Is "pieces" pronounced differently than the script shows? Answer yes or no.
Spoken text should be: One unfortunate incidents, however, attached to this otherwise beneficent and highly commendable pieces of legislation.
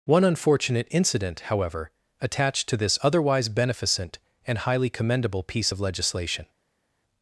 yes